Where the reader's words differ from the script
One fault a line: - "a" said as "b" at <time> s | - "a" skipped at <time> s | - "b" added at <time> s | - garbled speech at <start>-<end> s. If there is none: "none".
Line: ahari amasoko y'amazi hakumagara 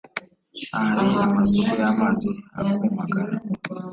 none